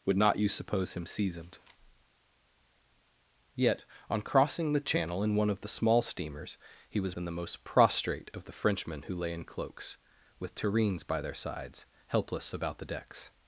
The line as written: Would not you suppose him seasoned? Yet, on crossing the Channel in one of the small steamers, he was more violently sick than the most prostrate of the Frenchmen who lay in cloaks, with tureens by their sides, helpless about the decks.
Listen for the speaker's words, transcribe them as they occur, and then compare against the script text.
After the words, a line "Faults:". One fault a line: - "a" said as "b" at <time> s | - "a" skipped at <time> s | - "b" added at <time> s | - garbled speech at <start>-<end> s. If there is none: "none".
Would not you suppose him seasoned? Yet, on crossing the Channel in one of the small steamers, he was than the most prostrate of the Frenchmen who lay in cloaks, with tureens by their sides, helpless about the decks.
Faults:
- "more violently sick" skipped at 7.2 s